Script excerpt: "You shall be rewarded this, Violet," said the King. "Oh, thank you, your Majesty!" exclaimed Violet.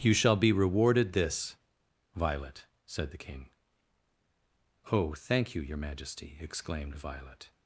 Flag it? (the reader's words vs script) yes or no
no